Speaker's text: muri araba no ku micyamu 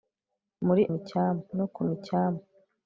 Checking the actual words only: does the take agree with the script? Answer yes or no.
no